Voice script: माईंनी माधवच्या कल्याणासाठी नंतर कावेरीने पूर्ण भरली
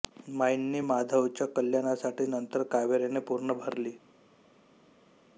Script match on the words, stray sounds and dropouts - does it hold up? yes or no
yes